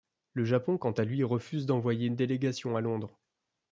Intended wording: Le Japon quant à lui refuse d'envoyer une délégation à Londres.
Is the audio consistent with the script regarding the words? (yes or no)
yes